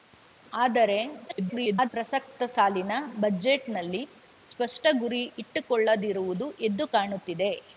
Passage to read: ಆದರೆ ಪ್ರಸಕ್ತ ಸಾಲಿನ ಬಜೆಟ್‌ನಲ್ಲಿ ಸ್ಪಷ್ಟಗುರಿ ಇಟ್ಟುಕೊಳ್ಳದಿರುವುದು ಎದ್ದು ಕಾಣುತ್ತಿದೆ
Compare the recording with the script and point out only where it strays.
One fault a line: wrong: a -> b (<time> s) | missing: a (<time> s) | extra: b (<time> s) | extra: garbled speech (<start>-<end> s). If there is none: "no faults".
extra: garbled speech (1.3-1.9 s)